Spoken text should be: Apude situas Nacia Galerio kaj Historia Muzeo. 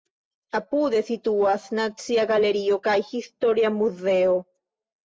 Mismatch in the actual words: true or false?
false